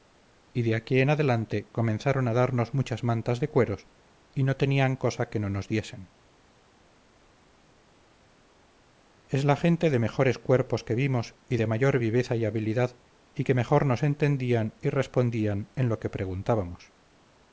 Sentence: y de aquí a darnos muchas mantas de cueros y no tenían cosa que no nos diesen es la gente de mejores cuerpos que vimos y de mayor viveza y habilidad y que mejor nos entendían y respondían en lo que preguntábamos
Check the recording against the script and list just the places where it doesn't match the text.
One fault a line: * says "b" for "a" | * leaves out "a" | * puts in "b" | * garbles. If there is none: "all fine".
* puts in "en adelante comenzaron"